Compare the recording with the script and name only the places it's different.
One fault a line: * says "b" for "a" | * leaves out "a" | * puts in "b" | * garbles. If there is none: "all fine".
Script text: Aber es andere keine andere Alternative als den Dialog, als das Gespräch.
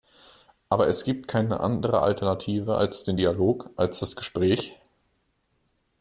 * says "gibt" for "andere"